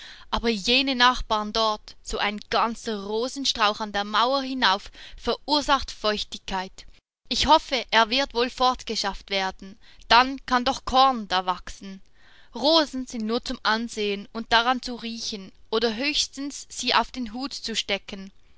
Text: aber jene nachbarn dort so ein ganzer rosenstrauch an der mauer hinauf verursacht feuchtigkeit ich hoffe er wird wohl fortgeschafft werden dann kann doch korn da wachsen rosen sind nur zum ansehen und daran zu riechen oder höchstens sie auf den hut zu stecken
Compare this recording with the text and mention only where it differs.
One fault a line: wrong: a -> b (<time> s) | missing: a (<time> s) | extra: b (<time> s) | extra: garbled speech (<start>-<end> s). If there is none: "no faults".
no faults